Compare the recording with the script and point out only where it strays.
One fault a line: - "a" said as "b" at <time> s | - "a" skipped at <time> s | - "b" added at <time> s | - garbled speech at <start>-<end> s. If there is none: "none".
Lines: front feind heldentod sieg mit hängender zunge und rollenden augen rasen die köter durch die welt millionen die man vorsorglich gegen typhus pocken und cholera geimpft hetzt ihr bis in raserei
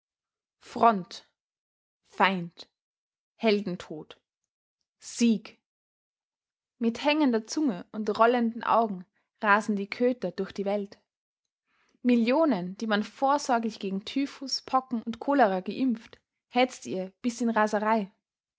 none